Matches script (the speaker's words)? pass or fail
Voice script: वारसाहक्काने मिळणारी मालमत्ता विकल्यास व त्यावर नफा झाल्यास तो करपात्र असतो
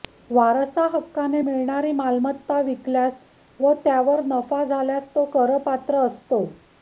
pass